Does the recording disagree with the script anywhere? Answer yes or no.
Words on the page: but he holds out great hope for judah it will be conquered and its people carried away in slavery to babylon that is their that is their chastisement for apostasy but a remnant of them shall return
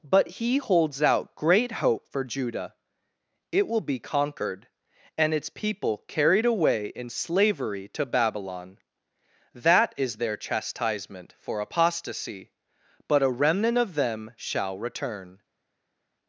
yes